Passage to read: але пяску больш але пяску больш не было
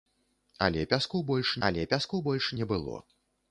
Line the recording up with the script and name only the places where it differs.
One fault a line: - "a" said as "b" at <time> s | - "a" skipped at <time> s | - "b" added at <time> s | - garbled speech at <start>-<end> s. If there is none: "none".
none